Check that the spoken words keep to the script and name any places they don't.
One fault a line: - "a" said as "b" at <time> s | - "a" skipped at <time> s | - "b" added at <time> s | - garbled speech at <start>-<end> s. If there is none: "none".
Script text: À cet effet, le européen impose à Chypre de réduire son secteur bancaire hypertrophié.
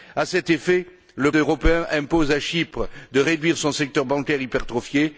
none